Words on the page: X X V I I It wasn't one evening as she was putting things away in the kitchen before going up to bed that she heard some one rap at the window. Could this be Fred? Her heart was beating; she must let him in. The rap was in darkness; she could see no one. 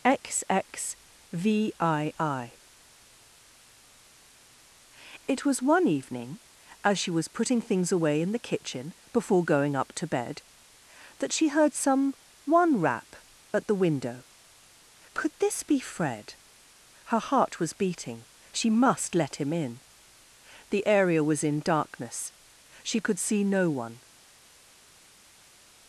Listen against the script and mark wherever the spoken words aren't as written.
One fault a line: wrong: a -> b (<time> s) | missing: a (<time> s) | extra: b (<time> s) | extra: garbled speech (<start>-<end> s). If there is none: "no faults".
wrong: wasn't -> was (5.5 s)
wrong: rap -> area (20.9 s)